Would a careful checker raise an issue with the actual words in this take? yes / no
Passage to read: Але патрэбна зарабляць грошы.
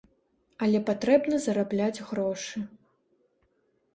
no